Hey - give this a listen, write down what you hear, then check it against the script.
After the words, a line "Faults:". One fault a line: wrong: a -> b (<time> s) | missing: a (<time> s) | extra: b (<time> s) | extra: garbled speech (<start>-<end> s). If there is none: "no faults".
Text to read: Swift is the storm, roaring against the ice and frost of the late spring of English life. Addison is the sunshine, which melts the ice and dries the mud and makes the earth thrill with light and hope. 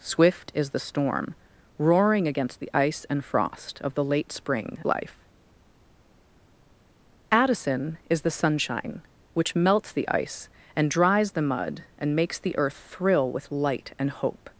Swift is the storm, roaring against the ice and frost of the late spring life. Addison is the sunshine, which melts the ice and dries the mud and makes the earth thrill with light and hope.
Faults:
missing: of English (4.8 s)